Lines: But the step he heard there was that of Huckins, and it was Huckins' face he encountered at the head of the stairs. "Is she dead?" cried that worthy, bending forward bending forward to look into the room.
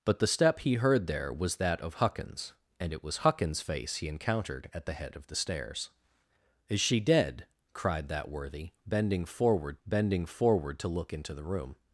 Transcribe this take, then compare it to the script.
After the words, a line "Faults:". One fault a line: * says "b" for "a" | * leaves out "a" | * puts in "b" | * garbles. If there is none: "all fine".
But the step he heard there was that of Huckins, and it was Huckins' face he encountered at the head of the stairs. "Is she dead?" cried that worthy, bending forward bending forward to look into the room.
Faults:
all fine